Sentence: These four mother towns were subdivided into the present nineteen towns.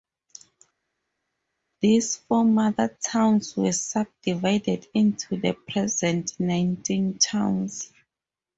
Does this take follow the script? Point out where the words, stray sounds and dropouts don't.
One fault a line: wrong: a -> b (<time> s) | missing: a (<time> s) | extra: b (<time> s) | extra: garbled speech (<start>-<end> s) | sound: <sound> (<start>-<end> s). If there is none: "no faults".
no faults